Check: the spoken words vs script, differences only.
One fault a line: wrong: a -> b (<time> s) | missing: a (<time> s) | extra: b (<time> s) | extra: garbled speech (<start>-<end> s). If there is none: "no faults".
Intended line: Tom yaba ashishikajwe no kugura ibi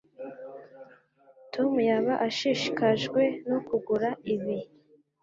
no faults